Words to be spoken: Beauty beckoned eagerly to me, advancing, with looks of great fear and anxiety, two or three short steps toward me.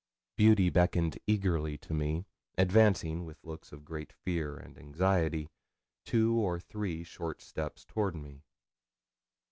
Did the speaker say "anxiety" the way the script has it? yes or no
yes